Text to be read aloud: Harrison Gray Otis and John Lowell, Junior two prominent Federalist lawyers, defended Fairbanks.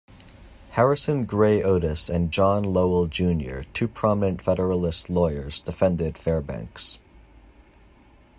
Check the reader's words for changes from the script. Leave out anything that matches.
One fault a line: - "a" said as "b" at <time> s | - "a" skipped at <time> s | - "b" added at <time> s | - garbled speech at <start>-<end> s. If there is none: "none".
none